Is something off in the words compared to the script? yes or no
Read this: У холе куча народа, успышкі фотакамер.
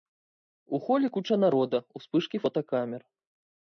no